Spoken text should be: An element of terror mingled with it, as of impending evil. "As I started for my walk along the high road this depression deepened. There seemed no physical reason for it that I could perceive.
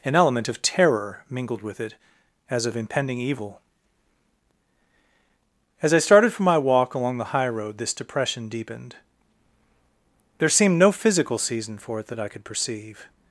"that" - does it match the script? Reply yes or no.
yes